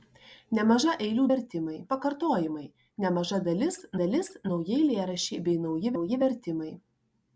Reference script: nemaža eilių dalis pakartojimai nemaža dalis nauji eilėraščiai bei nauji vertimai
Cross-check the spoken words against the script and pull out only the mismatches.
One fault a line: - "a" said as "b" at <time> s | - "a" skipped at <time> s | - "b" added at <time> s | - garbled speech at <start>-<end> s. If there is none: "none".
- "dalis" said as "vertimai" at 1.3 s
- "dalis" added at 4.0 s
- "nauji" added at 5.9 s